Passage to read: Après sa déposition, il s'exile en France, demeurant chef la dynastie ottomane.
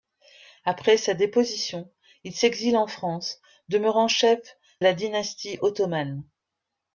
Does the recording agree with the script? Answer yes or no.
yes